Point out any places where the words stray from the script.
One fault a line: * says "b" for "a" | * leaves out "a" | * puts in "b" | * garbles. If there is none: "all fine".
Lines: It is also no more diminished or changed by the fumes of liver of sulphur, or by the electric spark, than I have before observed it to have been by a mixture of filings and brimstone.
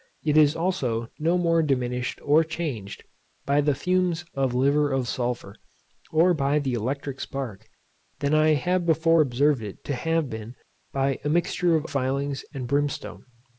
all fine